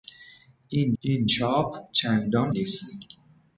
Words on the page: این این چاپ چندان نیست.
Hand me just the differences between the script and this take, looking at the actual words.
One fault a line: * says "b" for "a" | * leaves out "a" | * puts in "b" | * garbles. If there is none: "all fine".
all fine